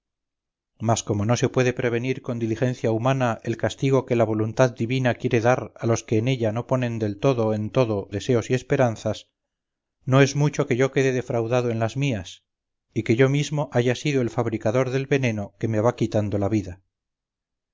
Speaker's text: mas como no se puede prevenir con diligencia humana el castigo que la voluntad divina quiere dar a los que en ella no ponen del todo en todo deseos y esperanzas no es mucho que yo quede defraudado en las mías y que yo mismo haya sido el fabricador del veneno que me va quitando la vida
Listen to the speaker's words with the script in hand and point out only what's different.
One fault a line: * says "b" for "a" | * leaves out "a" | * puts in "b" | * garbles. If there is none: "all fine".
all fine